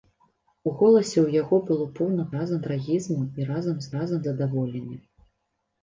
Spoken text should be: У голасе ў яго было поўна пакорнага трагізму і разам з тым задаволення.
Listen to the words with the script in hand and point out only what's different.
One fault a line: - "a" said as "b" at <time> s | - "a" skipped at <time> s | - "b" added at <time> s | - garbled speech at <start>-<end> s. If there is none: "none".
- "пакорнага" said as "разам" at 2.4 s
- "тым" said as "разам" at 4.0 s